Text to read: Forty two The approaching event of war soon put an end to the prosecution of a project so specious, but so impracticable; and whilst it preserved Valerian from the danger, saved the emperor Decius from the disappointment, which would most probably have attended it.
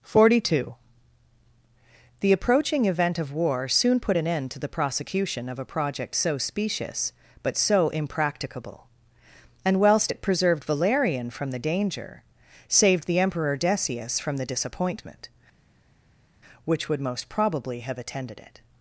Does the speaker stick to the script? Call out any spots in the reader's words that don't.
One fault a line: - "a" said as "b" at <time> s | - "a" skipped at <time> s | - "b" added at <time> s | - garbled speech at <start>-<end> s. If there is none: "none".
none